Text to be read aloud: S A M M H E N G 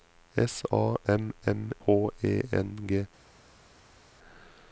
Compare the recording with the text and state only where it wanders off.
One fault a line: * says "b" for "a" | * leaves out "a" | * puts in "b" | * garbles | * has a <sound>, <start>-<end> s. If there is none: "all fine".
all fine